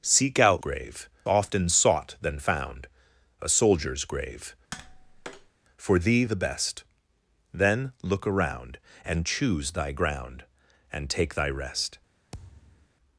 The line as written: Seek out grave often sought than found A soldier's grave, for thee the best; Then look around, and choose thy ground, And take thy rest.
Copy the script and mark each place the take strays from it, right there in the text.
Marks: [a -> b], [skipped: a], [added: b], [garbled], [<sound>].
Seek out grave often sought than found A soldier's grave, [tap] for thee the best; Then look around, and choose thy ground, And take thy rest. [thud]